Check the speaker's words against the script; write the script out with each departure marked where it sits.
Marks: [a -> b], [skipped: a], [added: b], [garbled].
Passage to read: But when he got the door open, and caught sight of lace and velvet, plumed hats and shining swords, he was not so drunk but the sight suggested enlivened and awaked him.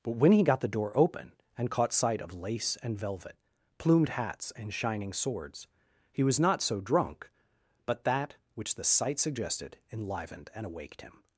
But when he got the door open, and caught sight of lace and velvet, plumed hats and shining swords, he was not so drunk but [added: that which] the sight suggested enlivened and awaked him.